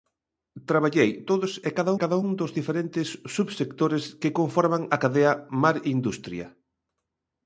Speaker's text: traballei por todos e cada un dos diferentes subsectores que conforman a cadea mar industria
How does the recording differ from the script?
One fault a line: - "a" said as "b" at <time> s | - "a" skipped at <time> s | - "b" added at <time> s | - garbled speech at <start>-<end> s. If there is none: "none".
- "por" skipped at 1.1 s
- "cada" added at 2.0 s